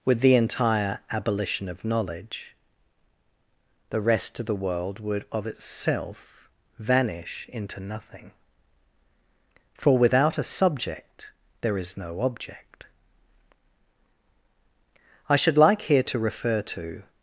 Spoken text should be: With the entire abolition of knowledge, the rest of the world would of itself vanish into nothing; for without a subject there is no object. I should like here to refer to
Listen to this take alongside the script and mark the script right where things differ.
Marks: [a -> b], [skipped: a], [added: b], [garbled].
With the entire abolition of knowledge, the rest of the world would of itself vanish into nothing; for without a subject there is no object. I should like here to refer to